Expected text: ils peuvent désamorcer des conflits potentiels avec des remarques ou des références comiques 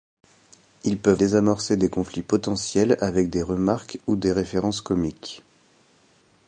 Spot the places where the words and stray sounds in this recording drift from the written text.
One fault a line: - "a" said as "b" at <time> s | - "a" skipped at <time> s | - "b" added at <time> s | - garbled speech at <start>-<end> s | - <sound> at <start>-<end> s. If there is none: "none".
none